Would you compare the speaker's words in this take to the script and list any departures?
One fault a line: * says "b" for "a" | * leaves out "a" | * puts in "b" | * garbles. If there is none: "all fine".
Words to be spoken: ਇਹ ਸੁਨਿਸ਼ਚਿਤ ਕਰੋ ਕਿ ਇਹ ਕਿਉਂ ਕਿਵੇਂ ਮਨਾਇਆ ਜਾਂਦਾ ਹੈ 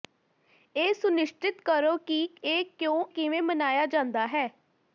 all fine